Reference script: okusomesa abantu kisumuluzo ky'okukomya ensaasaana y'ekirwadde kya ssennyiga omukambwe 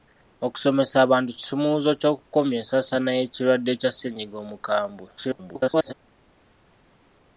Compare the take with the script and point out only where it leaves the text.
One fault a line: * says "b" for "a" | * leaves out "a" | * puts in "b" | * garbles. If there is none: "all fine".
* garbles